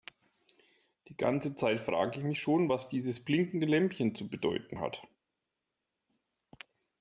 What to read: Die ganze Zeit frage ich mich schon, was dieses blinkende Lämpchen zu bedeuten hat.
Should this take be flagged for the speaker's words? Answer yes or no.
no